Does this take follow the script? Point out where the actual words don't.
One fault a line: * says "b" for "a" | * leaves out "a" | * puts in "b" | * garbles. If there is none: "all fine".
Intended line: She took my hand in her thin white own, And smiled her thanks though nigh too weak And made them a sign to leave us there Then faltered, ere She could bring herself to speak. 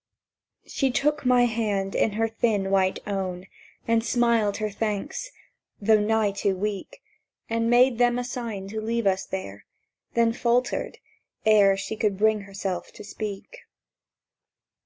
all fine